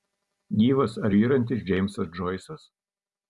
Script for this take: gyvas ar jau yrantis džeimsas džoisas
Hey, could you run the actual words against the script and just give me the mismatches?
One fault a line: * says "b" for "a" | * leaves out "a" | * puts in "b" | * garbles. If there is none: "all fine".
* leaves out "jau"